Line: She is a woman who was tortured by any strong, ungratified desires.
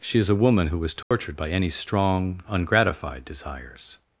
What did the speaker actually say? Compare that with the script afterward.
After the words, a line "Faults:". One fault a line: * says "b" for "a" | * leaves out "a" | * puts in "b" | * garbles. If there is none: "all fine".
She is a woman who was tortured by any strong, ungratified desires.
Faults:
all fine